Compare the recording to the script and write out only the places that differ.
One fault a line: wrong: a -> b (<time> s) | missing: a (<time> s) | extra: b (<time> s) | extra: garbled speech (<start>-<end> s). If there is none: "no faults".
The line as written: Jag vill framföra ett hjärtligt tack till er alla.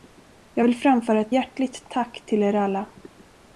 no faults